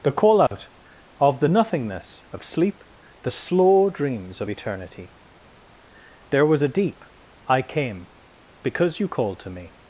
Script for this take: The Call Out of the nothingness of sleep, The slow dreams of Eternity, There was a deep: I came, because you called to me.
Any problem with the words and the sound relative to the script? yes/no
yes